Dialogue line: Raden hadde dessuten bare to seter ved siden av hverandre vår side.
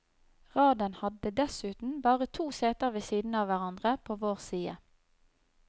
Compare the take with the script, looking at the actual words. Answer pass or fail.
fail